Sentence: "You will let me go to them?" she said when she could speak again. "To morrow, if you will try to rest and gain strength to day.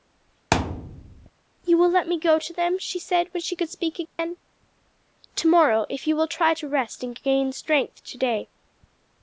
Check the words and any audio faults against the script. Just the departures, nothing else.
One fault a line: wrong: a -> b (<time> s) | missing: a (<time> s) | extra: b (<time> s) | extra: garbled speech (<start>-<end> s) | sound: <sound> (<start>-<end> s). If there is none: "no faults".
sound: thud (0.5-1.3 s)
sound: dropout (4.1-4.2 s)